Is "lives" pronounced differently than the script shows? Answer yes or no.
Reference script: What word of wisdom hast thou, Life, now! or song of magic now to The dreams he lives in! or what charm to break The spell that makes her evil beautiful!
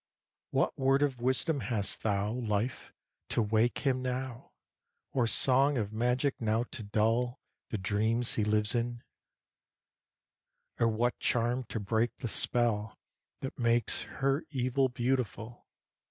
no